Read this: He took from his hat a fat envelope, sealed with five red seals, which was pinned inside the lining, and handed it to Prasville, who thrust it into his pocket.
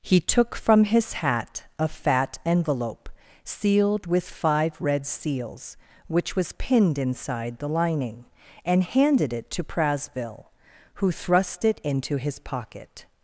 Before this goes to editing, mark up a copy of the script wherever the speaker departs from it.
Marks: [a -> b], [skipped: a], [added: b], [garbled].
He took from his hat a fat envelope, sealed with five red seals, which was pinned inside the lining, and handed it to Prasville, who thrust it into his pocket.